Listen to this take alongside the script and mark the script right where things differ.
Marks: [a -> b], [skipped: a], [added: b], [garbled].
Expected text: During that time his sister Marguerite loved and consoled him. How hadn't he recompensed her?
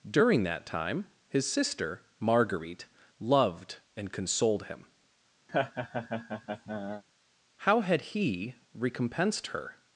During that time his sister Marguerite loved and consoled him. How [hadn't -> had] he recompensed her?